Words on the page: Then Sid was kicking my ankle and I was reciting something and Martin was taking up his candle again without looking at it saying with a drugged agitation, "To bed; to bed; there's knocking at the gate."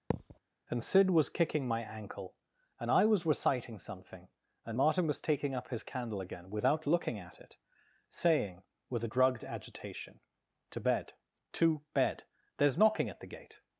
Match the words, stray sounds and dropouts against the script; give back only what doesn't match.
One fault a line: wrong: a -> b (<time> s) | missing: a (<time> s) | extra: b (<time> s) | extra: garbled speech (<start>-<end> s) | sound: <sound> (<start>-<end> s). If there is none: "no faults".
sound: thud (0.1-0.4 s)
wrong: Then -> And (0.7 s)